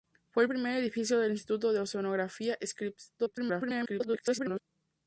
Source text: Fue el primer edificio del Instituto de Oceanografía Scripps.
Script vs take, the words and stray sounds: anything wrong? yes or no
yes